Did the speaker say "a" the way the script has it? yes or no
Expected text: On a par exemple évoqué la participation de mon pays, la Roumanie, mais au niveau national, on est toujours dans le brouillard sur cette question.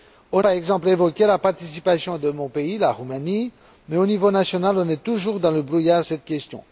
no